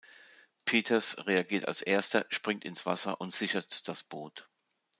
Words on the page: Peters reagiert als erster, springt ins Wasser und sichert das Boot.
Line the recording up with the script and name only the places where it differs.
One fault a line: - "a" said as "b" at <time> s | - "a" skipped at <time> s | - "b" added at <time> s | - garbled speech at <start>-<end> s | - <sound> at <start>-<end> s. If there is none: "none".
none